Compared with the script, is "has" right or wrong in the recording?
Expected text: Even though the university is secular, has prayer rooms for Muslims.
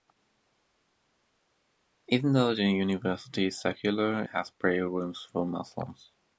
right